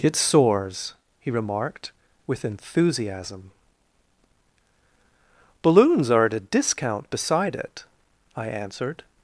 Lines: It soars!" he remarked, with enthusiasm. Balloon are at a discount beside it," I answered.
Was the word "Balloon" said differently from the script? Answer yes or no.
yes